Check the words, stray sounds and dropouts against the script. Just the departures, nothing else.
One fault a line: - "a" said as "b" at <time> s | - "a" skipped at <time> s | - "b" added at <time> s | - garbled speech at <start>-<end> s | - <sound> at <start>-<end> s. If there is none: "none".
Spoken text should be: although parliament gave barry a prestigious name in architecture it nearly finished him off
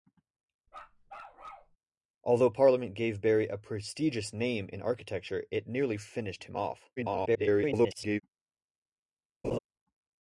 - bark at 0.7-1.8 s
- garbled speech at 7.0-8.2 s
- laugh at 9.4-9.6 s